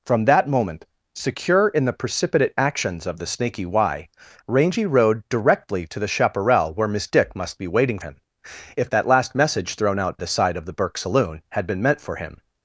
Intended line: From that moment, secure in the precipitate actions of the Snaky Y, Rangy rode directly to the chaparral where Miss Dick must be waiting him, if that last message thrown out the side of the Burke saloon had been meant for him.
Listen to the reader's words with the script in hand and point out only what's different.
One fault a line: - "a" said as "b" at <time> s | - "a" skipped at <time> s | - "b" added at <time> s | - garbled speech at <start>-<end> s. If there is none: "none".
none